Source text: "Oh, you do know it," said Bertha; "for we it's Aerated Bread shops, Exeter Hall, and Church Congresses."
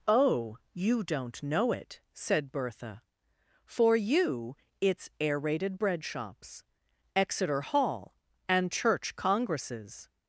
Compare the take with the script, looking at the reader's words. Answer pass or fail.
fail